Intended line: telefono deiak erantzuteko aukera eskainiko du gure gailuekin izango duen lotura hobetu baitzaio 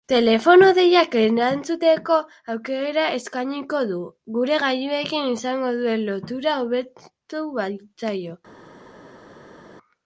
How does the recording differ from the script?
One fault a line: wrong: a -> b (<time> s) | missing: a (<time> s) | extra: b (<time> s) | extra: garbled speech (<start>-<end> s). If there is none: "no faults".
no faults